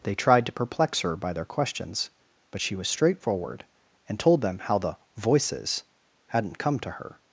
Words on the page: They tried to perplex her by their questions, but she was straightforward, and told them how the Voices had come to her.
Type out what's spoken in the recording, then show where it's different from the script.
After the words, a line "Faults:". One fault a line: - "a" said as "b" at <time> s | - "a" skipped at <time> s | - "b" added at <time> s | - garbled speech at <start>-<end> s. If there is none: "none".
They tried to perplex her by their questions, but she was straightforward, and told them how the Voices hadn't come to her.
Faults:
- "had" said as "hadn't" at 6.3 s